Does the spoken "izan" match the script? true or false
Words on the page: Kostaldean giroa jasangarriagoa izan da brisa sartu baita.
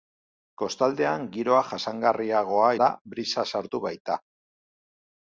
false